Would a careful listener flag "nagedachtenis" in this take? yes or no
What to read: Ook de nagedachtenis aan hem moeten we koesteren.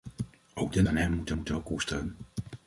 yes